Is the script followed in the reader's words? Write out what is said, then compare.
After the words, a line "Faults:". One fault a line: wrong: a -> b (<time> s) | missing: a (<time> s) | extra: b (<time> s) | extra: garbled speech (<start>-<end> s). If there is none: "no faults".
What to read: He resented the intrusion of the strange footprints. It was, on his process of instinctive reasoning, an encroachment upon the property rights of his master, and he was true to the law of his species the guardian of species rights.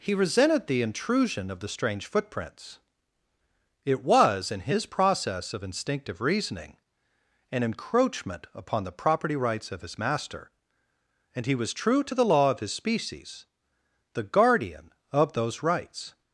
He resented the intrusion of the strange footprints. It was, in his process of instinctive reasoning, an encroachment upon the property rights of his master, and he was true to the law of his species the guardian of those rights.
Faults:
wrong: on -> in (4.5 s)
wrong: species -> those (15.3 s)